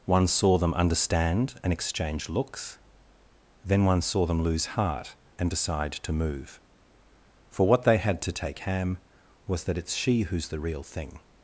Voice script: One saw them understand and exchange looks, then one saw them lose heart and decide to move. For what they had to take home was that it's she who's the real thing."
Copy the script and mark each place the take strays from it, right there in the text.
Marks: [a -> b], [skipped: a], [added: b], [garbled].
One saw them understand and exchange looks, then one saw them lose heart and decide to move. For what they had to take [home -> ham] was that it's she who's the real thing."